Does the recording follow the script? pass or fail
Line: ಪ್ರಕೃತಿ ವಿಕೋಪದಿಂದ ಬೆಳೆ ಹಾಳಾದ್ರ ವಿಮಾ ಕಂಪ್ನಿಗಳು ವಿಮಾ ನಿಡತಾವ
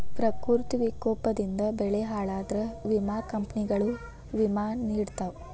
pass